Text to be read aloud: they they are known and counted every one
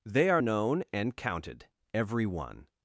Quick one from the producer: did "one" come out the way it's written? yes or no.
yes